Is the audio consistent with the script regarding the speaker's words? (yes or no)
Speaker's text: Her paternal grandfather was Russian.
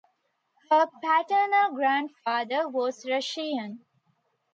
yes